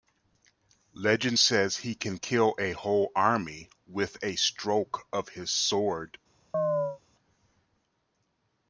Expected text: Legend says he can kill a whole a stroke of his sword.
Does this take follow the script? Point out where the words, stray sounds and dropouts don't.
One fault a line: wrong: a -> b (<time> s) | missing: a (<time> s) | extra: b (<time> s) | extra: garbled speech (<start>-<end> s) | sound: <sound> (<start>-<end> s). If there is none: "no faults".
extra: army with (3.1 s)
sound: chirp (6.5-7.0 s)